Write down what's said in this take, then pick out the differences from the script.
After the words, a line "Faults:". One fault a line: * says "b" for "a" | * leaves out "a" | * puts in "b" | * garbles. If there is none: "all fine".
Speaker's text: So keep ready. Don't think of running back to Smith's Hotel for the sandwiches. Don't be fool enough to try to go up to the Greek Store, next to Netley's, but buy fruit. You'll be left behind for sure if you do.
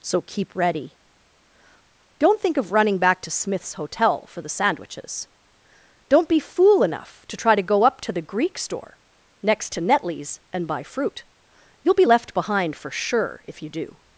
So keep ready. Don't think of running back to Smith's Hotel for the sandwiches. Don't be fool enough to try to go up to the Greek Store, next to Netley's, and buy fruit. You'll be left behind for sure if you do.
Faults:
* says "and" for "but"